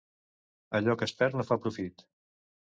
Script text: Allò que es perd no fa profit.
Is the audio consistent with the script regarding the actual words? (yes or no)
yes